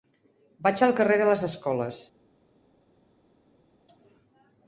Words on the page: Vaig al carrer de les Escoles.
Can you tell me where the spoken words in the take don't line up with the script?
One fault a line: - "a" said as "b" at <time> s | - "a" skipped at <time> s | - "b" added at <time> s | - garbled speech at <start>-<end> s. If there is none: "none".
none